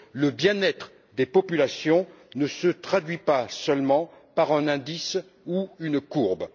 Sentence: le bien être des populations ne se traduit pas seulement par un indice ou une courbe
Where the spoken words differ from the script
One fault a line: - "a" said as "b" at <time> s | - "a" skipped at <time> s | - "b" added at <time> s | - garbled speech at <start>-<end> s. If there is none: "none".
none